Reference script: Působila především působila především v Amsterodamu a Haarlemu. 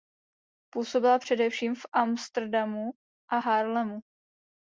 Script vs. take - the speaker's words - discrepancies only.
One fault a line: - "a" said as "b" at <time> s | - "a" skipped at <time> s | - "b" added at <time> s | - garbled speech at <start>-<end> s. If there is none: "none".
- "působila především" skipped at 1.8 s